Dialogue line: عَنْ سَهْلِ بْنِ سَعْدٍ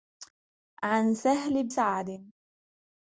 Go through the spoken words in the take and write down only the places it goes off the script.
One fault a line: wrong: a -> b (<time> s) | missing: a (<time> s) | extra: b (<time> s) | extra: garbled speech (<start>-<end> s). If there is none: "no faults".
missing: بْنِ (1.7 s)